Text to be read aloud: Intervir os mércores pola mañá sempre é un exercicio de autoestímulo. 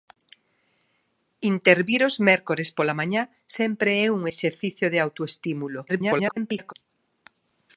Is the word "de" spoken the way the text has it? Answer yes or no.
yes